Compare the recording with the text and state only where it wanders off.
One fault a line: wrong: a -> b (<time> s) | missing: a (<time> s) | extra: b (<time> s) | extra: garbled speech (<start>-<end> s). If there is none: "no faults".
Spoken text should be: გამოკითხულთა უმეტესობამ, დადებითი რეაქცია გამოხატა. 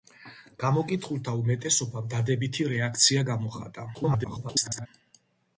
extra: garbled speech (3.9-4.9 s)